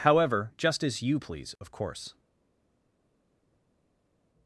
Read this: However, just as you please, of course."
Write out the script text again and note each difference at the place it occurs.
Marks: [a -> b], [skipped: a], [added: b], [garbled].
However, just as you please, of course."